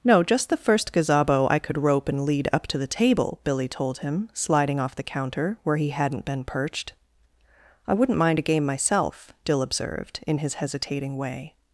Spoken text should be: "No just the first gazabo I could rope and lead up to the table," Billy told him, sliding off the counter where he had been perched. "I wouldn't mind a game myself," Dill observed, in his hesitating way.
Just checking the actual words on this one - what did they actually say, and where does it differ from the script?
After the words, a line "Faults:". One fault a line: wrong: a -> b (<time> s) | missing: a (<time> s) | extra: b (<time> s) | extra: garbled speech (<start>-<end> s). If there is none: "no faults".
"No just the first gazabo I could rope and lead up to the table," Billy told him, sliding off the counter where he hadn't been perched. "I wouldn't mind a game myself," Dill observed, in his hesitating way.
Faults:
wrong: had -> hadn't (5.9 s)